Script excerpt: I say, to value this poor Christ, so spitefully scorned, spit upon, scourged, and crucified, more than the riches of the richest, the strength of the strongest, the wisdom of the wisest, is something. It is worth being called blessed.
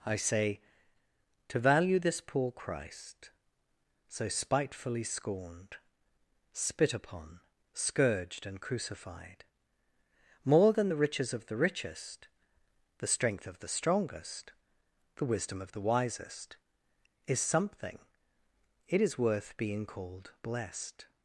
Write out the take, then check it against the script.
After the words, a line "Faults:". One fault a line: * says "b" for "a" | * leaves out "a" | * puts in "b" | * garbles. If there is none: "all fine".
I say, to value this poor Christ, so spitefully scorned, spit upon, scourged, and crucified, more than the riches of the richest, the strength of the strongest, the wisdom of the wisest, is something. It is worth being called blessed.
Faults:
all fine